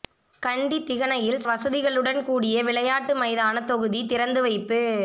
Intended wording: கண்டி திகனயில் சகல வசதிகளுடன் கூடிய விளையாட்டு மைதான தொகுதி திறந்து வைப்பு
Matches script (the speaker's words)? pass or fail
fail